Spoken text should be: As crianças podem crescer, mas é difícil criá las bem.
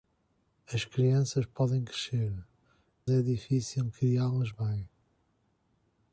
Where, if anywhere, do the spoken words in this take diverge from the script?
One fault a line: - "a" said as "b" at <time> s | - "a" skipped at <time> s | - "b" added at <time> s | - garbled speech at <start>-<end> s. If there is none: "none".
- "mas" skipped at 2.3 s